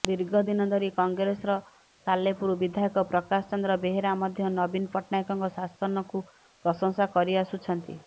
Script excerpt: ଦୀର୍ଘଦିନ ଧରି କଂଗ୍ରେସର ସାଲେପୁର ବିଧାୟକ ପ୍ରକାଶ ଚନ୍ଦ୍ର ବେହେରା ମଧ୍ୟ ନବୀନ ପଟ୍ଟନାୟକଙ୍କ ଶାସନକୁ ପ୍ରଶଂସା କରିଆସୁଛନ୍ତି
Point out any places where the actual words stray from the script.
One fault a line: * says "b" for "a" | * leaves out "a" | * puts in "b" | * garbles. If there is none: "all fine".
all fine